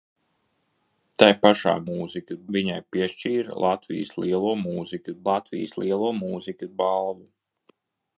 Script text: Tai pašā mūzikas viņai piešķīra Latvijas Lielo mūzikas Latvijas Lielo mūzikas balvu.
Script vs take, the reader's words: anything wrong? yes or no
no